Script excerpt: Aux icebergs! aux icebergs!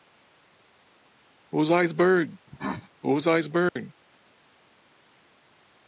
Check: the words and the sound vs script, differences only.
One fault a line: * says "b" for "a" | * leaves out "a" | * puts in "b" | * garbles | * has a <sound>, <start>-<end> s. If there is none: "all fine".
* has a cough, 2.5-2.9 s
* has a dropout, 3.7-3.8 s